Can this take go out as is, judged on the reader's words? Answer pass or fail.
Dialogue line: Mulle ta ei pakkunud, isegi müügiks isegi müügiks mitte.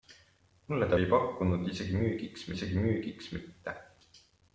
pass